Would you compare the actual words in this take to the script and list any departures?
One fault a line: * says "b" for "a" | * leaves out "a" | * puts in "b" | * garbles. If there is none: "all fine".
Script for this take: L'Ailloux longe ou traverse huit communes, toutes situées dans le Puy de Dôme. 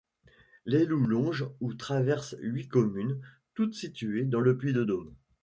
all fine